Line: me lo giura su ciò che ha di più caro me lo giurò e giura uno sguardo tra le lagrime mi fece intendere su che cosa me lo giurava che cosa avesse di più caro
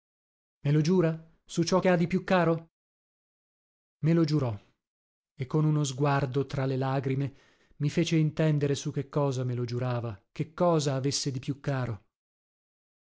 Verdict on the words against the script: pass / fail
fail